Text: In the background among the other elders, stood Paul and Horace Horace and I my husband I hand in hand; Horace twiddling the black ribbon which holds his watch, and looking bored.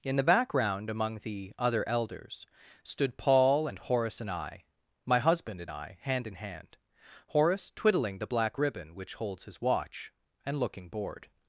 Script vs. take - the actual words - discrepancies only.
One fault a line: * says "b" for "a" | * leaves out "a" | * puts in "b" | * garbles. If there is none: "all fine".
* leaves out "Horace"
* puts in "and"